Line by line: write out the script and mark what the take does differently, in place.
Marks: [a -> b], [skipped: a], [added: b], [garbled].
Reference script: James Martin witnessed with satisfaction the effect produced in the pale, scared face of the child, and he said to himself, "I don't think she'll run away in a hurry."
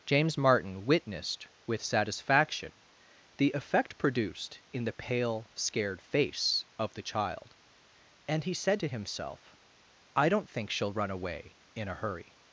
James Martin witnessed with satisfaction the effect produced in the pale, scared face of the child, and he said to himself, "I don't think she'll run away in a hurry."